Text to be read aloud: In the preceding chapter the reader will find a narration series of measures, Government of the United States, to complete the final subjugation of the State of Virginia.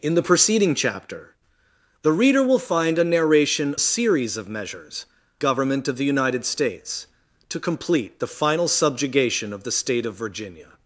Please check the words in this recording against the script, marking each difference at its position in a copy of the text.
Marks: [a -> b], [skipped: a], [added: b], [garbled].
In the preceding chapter the reader will find a narration series of measures, Government of the United States, to complete the final subjugation of the State of Virginia.